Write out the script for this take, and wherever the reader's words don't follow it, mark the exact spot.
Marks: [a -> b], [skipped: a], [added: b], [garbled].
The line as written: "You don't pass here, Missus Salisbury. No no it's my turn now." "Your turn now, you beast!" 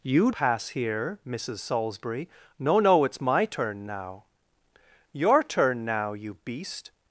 "You [skipped: don't] pass here, Missus Salisbury. No no it's my turn now." "Your turn now, you beast!"